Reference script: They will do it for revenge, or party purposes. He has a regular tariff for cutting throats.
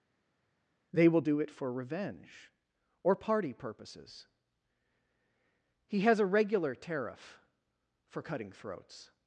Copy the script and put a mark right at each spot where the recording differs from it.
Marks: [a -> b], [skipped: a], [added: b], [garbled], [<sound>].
They will do it for revenge, or party purposes. He has a regular tariff for cutting throats.